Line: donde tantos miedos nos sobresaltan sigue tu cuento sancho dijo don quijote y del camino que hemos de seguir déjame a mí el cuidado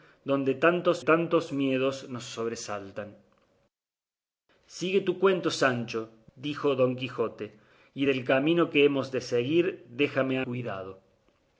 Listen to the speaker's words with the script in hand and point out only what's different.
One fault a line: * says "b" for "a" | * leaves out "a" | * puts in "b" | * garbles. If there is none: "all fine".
* puts in "tantos"
* leaves out "mí el"